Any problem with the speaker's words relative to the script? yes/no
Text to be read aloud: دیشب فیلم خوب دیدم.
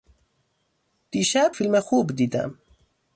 no